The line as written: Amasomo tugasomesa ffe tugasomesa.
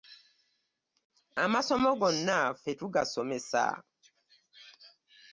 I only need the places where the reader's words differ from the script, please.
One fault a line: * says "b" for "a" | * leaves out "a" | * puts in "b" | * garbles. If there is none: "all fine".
* says "gonna" for "tugasomesa"